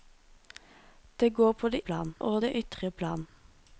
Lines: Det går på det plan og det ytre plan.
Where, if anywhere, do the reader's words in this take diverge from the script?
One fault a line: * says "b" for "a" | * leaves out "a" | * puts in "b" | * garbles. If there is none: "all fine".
all fine